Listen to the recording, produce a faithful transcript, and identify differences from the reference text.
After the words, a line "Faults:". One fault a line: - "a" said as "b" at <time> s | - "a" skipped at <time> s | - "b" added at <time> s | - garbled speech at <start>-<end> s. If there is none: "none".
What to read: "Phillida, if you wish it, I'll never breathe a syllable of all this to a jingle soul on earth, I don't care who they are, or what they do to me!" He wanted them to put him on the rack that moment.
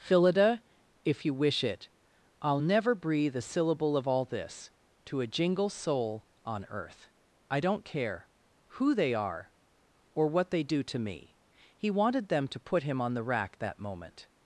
"Phillida, if you wish it, I'll never breathe a syllable of all this to a jingle soul on earth, I don't care who they are, or what they do to me!" He wanted them to put him on the rack that moment.
Faults:
none